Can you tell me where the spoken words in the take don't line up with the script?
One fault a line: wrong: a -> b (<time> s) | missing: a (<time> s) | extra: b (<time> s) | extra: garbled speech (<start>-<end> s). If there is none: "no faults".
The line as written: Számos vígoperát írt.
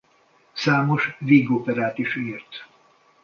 extra: is (2.0 s)